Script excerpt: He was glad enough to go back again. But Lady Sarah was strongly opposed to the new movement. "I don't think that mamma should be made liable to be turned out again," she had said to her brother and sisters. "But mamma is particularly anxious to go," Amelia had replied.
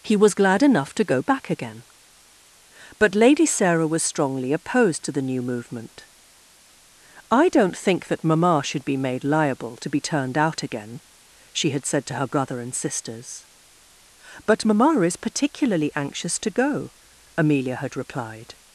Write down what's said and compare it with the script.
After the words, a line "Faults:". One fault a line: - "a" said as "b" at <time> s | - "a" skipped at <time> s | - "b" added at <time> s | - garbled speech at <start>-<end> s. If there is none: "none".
He was glad enough to go back again. But Lady Sarah was strongly opposed to the new movement. "I don't think that mamma should be made liable to be turned out again," she had said to her brother and sisters. "But mamma is particularly anxious to go," Amelia had replied.
Faults:
none